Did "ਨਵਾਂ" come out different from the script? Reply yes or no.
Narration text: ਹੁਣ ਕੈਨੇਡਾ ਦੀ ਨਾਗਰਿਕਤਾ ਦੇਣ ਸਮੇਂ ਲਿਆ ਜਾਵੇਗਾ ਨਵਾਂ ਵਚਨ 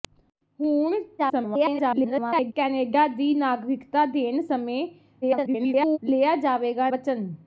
yes